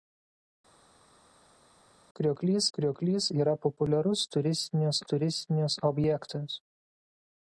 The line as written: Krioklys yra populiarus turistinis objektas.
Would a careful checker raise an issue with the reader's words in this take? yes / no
yes